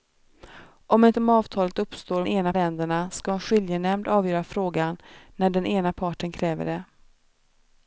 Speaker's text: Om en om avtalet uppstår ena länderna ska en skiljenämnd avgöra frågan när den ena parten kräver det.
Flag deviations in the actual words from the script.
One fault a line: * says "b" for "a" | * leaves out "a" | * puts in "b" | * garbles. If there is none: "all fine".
all fine